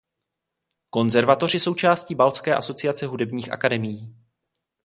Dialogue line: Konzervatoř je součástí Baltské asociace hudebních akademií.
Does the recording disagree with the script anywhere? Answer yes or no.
no